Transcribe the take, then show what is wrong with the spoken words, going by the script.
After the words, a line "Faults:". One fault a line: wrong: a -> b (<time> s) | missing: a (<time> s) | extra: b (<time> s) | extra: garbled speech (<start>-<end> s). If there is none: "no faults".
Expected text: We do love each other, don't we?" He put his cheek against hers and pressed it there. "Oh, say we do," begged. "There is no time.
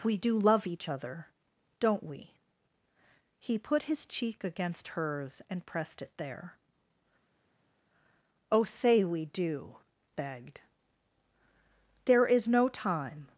We do love each other, don't we?" He put his cheek against hers and pressed it there. "Oh, say we do," begged. "There is no time.
Faults:
no faults